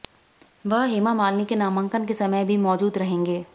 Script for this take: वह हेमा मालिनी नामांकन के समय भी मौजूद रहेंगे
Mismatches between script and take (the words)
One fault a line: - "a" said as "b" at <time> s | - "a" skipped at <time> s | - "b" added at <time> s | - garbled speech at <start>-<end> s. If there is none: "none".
- "के" added at 1.4 s